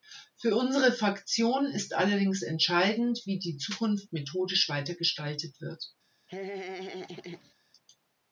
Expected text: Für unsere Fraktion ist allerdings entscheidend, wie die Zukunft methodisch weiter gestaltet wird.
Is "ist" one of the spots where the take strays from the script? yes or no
no